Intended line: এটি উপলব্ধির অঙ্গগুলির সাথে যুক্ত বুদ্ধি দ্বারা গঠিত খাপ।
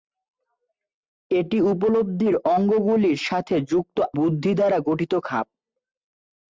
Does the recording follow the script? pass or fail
pass